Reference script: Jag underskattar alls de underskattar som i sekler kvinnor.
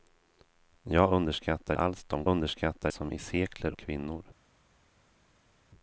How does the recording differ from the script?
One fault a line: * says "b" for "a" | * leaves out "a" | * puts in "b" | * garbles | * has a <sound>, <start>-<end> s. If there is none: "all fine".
all fine